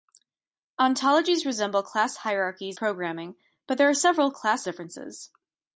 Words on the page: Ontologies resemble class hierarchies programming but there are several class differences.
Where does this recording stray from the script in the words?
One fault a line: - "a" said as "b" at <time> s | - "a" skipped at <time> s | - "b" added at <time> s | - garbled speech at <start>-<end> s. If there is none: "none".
none